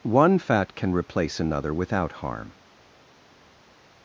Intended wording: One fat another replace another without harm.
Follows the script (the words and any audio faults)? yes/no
no